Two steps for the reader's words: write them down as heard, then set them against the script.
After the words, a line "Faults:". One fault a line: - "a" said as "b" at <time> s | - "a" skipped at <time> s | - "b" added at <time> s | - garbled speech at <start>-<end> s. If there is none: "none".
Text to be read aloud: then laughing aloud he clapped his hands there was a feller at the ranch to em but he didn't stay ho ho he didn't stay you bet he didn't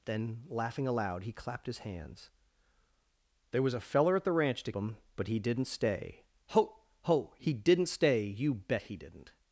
then laughing aloud he clapped his hands there was a feller at the ranch to em but he didn't stay ho ho he didn't stay you bet he didn't
Faults:
none